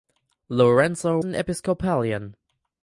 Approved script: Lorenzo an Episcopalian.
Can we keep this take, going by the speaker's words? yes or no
yes